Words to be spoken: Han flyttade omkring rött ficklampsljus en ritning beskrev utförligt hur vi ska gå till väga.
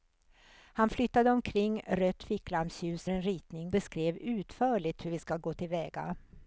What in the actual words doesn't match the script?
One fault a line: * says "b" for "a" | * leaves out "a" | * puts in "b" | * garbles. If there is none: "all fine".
all fine